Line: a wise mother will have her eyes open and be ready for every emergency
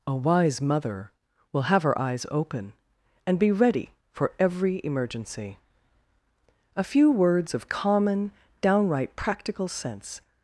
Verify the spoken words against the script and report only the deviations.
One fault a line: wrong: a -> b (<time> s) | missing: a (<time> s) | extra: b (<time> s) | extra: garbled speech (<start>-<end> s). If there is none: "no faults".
extra: a few words of common downright practical sense (6.8 s)